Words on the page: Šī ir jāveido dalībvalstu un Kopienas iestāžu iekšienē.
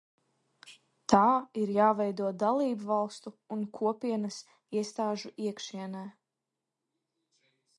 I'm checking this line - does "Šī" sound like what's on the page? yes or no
no